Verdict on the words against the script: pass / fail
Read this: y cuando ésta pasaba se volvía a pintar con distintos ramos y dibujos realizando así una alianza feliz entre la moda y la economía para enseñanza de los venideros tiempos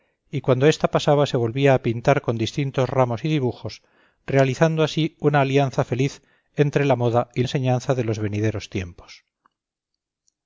fail